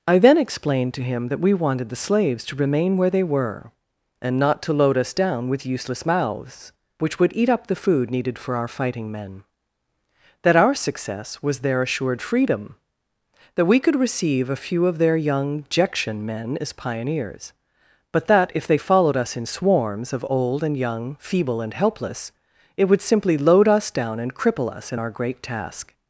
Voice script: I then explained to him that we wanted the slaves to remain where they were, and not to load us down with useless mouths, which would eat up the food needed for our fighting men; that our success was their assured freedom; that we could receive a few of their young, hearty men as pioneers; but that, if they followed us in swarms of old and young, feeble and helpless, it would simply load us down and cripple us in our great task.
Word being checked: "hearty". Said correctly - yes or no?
no